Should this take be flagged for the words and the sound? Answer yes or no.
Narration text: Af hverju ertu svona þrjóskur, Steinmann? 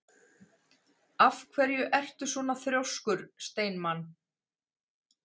no